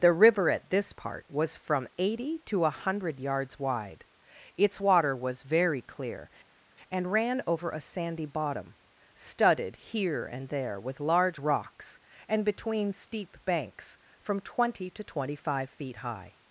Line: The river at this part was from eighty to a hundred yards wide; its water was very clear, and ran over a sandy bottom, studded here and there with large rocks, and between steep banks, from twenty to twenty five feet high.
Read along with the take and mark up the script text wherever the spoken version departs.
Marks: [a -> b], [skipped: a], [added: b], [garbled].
The river at this part was from eighty to a hundred yards wide; its water was very clear, and ran over a sandy bottom, studded here and there with large rocks, and between steep banks, from twenty to twenty five feet high.